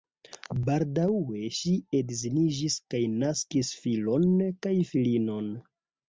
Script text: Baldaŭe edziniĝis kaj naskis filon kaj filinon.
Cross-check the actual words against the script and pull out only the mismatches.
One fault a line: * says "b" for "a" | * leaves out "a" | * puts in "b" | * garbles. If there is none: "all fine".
* puts in "ŝi"